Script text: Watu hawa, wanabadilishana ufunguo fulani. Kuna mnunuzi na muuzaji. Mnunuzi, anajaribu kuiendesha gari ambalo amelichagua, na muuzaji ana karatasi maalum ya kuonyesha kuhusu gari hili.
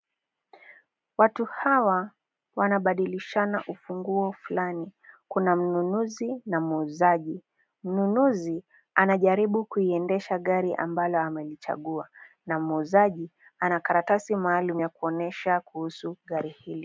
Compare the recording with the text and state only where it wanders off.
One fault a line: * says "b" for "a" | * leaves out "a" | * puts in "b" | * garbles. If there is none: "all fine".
all fine